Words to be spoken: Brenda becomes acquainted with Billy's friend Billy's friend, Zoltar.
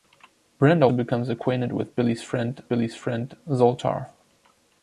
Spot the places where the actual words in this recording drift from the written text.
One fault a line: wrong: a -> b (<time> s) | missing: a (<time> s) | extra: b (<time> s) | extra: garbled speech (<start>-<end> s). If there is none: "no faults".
no faults